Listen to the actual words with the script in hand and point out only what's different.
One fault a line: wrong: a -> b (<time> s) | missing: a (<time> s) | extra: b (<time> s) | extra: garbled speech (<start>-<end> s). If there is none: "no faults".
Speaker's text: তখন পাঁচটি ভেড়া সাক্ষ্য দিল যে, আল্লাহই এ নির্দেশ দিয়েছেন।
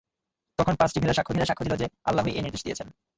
extra: ভেড়া সাক্ষ্য (1.3 s)